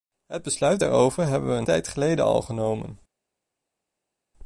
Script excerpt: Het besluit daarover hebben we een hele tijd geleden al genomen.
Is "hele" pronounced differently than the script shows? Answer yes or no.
yes